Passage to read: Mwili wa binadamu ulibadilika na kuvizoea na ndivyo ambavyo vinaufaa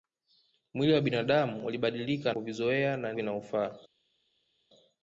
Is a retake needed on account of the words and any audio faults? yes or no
yes